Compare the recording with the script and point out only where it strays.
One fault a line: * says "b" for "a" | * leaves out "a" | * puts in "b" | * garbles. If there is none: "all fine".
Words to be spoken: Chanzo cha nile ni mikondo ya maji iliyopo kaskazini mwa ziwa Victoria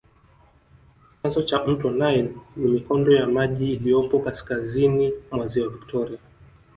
* puts in "mto"